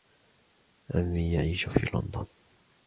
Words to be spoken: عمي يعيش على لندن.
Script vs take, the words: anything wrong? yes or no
yes